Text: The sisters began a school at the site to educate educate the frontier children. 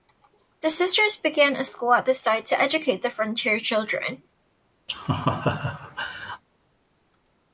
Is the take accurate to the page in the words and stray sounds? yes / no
no